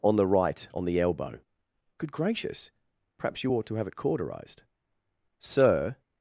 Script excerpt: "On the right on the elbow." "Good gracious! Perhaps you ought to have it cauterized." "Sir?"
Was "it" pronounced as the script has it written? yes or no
yes